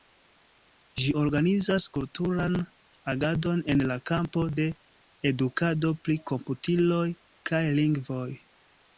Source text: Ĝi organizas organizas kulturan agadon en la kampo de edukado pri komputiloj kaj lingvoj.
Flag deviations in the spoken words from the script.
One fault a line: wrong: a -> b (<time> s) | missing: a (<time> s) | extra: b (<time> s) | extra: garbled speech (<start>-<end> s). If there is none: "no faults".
missing: organizas (1.8 s)